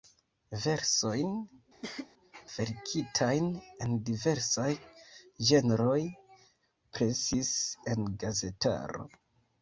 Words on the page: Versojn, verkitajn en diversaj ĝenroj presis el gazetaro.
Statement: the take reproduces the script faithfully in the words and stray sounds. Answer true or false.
false